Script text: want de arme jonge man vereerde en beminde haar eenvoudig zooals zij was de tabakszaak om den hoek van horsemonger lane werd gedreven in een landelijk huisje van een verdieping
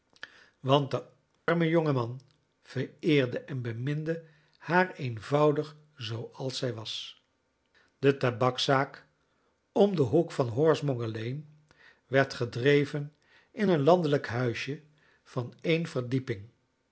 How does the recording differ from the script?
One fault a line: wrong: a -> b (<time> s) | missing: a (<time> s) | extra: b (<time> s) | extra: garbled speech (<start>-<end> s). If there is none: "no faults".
no faults